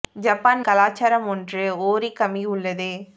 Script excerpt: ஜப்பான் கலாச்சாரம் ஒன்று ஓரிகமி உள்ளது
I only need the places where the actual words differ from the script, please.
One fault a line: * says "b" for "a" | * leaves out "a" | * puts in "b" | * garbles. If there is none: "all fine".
all fine